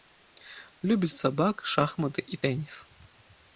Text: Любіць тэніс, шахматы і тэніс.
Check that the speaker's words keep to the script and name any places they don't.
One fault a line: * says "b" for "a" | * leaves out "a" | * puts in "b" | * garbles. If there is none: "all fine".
* says "сабак" for "тэніс"